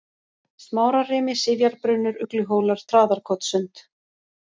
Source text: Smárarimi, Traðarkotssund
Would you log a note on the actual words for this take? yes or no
yes